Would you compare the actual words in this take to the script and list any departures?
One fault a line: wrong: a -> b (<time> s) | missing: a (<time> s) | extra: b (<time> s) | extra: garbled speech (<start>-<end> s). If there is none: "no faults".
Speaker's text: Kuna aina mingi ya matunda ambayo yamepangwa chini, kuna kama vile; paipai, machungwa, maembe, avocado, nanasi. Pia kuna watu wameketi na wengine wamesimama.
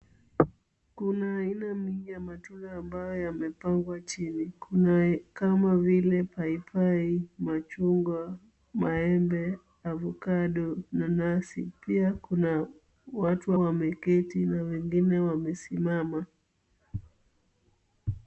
no faults